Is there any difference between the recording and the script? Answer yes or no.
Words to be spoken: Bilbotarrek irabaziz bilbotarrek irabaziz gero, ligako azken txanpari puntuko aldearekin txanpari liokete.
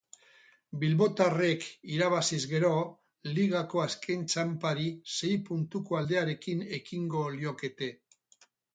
yes